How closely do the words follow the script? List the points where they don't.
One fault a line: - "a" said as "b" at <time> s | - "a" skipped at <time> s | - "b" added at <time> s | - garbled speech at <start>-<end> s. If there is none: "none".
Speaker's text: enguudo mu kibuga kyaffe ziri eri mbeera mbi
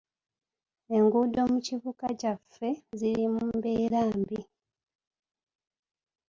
- "eri" said as "mu" at 3.3 s